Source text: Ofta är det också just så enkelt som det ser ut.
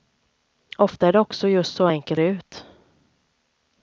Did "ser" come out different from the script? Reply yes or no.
yes